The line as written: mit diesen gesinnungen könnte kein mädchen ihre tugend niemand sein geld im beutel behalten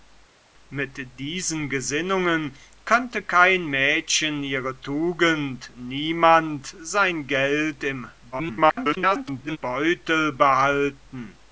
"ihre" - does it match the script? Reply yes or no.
yes